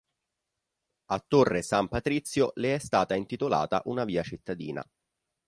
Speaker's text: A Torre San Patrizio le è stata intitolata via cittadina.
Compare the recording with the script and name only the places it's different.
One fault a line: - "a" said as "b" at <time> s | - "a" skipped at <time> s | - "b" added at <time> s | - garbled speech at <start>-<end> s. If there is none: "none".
- "una" added at 3.8 s